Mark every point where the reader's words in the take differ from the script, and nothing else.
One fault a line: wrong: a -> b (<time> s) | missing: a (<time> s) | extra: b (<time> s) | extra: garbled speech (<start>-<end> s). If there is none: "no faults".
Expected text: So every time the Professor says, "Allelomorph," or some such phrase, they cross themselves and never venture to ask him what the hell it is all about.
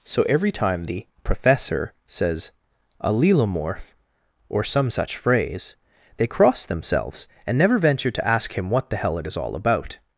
no faults